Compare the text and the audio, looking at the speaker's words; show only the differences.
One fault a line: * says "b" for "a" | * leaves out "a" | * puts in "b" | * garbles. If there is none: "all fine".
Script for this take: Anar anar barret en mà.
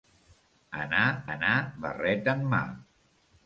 all fine